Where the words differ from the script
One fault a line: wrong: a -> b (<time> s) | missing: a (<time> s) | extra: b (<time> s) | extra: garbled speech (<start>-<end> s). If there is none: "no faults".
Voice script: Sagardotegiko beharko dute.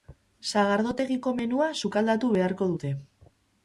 extra: menua sukaldatu (1.4 s)